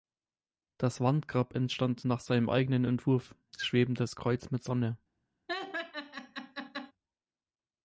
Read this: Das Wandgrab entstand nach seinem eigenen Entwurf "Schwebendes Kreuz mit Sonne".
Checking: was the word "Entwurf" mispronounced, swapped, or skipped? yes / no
no